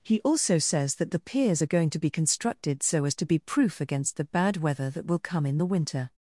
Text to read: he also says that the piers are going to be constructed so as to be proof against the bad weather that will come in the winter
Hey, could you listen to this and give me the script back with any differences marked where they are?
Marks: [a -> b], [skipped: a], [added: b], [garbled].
he also says that the piers are going to be constructed so as to be proof against the bad weather that will come in the winter